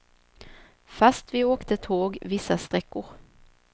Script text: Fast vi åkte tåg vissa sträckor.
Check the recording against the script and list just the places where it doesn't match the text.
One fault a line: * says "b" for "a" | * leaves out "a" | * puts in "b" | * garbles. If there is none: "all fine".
all fine